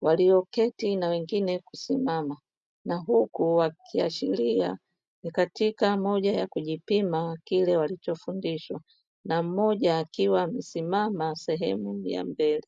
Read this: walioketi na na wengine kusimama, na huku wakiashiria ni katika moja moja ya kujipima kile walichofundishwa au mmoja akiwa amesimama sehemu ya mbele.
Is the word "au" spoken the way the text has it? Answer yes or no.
no